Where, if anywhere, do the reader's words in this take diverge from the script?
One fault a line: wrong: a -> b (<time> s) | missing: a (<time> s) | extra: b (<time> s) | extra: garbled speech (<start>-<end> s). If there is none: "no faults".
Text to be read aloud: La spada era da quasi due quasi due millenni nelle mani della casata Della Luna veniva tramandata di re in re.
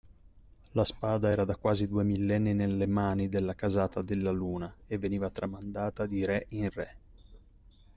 missing: quasi due (2.0 s)
extra: e (4.9 s)